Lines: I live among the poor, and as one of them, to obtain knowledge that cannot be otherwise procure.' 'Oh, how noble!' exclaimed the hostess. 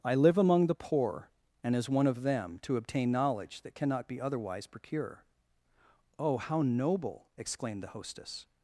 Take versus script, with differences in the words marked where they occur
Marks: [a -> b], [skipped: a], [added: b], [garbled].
I live among the poor, and as one of them, to obtain knowledge that cannot be otherwise procure.' 'Oh, how noble!' exclaimed the hostess.